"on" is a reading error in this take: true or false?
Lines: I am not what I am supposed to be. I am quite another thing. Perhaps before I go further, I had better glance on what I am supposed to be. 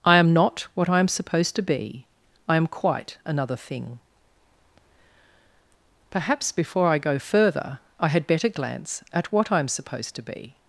true